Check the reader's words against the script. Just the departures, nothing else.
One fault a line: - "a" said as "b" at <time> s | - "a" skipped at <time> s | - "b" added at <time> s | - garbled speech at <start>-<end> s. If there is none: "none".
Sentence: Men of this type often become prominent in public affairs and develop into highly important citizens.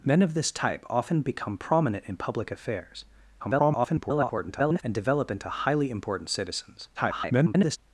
- garbled speech at 3.4-4.8 s
- garbled speech at 6.9-7.8 s